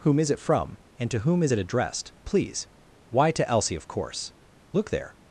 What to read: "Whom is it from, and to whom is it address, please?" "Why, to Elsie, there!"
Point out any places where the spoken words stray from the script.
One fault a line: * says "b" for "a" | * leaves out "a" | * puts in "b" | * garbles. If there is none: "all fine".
* says "addressed" for "address"
* puts in "of course Look"